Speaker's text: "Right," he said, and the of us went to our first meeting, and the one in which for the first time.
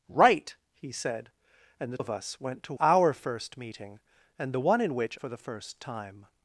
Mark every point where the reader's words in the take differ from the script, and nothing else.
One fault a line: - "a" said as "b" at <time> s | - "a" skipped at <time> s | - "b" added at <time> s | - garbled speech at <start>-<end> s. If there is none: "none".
none